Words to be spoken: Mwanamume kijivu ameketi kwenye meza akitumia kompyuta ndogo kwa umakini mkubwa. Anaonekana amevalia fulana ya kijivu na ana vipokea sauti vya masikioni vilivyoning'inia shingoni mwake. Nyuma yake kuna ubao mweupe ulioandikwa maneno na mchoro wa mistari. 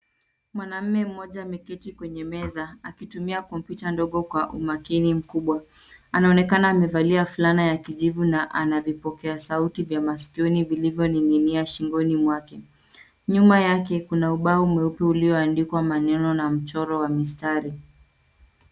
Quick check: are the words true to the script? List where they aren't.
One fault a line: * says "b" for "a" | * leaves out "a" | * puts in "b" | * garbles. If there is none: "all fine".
* says "mmoja" for "kijivu"